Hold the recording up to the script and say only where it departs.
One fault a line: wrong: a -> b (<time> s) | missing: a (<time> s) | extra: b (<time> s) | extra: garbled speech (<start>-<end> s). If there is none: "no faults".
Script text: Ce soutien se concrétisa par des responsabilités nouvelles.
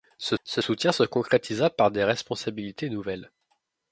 extra: ce (0.4 s)